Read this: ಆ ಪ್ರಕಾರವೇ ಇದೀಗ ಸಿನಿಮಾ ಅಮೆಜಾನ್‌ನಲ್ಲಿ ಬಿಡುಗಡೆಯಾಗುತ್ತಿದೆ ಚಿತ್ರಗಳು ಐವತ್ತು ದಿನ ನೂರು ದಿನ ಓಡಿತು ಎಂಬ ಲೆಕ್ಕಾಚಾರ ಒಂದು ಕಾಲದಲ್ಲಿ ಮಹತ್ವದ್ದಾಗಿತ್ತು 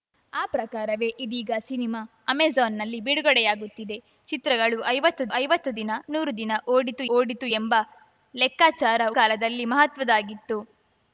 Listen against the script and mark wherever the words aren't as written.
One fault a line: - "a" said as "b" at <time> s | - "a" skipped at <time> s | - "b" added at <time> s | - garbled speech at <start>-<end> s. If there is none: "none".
- "ಐವತ್ತು" added at 5.3 s
- "ಓಡಿತು" added at 7.1 s
- "ಒಂದು" skipped at 9.0 s